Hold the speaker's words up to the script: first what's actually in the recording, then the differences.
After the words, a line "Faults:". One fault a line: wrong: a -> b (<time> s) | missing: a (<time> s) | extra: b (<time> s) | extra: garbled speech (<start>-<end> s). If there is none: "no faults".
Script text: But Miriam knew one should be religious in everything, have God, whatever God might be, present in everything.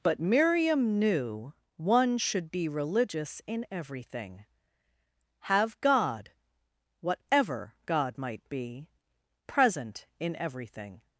But Miriam knew one should be religious in everything, have God, whatever God might be, present in everything.
Faults:
no faults